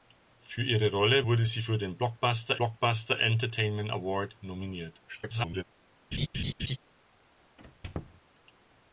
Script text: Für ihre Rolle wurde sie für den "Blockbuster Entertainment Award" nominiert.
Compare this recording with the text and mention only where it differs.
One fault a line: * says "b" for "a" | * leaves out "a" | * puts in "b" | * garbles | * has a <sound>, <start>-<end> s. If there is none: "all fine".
* puts in "blockbuster"
* garbles
* has a laugh, 6.1-6.8 s
* has a squeak, 7.6-8.2 s